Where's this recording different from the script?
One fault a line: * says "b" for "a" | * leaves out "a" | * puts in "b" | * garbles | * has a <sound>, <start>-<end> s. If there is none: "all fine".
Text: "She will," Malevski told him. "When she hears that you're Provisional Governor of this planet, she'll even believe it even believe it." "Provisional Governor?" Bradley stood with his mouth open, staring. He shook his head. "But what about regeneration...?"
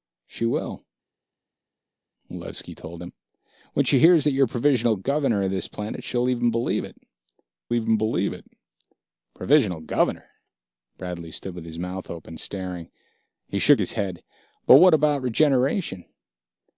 all fine